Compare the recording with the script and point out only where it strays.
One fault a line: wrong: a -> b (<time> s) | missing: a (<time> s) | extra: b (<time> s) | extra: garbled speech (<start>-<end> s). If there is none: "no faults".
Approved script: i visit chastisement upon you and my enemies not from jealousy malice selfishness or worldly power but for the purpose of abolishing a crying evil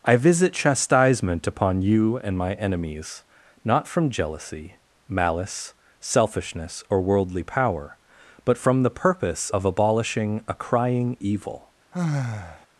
wrong: for -> from (8.6 s)